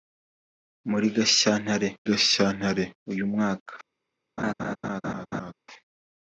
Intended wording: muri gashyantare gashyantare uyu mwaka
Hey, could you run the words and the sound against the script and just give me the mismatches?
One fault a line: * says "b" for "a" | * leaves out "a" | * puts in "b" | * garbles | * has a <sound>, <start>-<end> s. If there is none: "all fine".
* has a laugh, 4.4-5.5 s